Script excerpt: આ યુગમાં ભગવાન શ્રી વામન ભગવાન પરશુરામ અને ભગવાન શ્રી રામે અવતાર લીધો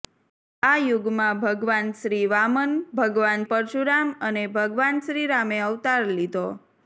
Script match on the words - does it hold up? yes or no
yes